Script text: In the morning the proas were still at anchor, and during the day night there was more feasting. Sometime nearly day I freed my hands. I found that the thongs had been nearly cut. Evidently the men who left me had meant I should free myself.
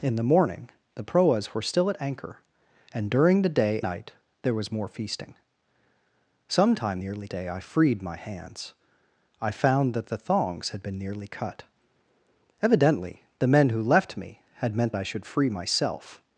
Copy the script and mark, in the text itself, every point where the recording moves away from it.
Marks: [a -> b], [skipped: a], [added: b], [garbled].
In the morning the proas were still at anchor, and during the day night there was more feasting. Sometime nearly day I freed my hands. I found that the thongs had been nearly cut. Evidently the men who left me had meant I should free myself.